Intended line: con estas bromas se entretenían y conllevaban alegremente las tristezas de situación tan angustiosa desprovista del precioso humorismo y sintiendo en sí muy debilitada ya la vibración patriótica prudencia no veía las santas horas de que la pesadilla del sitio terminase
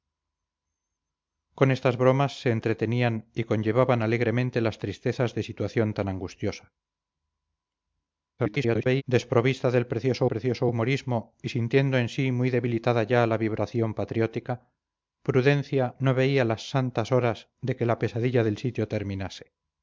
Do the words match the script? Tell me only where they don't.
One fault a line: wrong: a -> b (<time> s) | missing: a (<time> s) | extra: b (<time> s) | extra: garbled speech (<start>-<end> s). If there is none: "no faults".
extra: garbled speech (8.4-9.0 s)
extra: precioso (10.2 s)